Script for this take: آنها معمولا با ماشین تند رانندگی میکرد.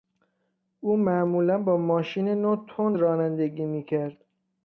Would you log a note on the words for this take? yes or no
yes